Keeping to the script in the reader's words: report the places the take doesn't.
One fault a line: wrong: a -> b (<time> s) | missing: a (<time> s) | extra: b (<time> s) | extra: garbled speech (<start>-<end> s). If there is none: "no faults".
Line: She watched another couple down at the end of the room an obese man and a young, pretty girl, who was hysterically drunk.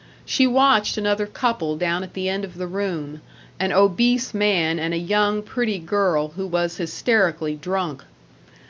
no faults